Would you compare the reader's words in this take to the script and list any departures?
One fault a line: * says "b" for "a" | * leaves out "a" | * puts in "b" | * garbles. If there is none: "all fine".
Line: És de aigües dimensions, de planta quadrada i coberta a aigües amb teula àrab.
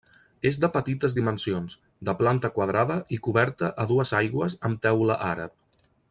* says "petites" for "aigües"
* puts in "dues"